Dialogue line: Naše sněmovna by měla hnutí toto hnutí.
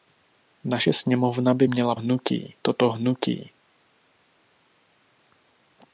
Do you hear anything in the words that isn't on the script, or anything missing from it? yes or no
no